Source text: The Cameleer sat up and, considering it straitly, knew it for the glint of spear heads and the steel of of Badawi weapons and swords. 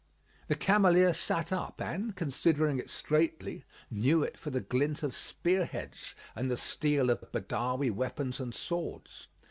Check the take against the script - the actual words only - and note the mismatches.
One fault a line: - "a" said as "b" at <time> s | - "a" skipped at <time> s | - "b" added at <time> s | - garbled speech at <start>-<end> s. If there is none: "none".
none